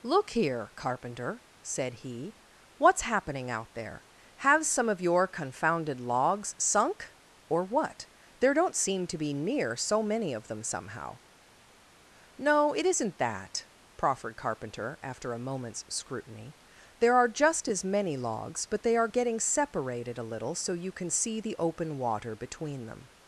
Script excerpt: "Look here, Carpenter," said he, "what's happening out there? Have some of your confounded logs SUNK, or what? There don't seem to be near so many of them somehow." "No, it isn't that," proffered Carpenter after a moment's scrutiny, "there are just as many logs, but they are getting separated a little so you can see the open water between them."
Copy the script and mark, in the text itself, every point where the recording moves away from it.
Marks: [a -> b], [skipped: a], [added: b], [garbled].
"Look here, Carpenter," said he, "what's happening out there? Have some of your confounded logs SUNK, or what? There don't seem to be near so many of them somehow." "No, it isn't that," proffered Carpenter after a moment's scrutiny, "there are just as many logs, but they are getting separated a little so you can see the open water between them."